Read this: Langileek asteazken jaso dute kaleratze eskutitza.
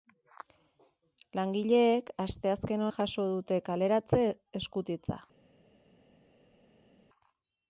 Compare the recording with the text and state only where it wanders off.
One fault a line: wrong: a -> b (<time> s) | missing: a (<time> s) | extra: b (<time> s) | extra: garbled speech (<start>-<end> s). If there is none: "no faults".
no faults